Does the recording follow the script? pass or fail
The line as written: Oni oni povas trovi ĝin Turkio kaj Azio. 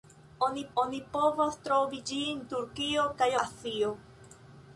pass